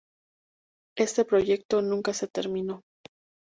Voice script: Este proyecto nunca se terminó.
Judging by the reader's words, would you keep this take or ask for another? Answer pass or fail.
pass